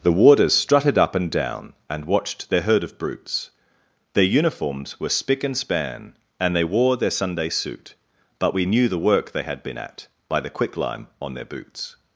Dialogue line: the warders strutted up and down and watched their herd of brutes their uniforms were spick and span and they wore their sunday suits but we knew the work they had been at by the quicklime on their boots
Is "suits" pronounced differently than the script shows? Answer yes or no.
yes